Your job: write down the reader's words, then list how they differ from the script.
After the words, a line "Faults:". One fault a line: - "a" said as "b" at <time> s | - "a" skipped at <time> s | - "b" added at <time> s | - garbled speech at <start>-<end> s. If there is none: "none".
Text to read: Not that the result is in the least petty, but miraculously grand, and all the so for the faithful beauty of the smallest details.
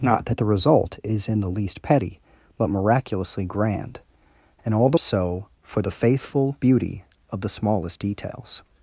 Not that the result is in the least petty, but miraculously grand, and all the so for the faithful beauty of the smallest details.
Faults:
none